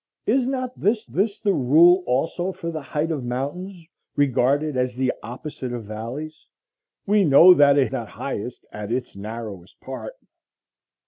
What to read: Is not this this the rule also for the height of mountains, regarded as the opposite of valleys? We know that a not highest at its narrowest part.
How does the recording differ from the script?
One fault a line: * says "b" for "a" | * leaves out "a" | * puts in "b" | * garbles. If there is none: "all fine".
all fine